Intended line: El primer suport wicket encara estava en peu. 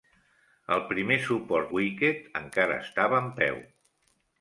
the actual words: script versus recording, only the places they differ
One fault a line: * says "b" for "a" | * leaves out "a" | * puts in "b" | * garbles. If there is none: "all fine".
all fine